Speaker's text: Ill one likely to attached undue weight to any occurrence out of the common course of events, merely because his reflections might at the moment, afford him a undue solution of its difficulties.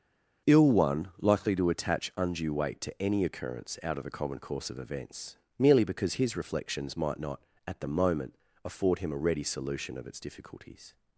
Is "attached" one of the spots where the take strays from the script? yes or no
yes